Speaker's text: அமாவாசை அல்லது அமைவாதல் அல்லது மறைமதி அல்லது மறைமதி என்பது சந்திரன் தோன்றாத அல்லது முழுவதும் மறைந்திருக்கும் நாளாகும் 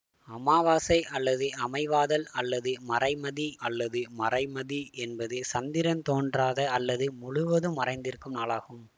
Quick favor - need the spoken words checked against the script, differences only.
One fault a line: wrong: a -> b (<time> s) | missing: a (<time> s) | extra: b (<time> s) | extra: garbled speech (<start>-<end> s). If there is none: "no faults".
no faults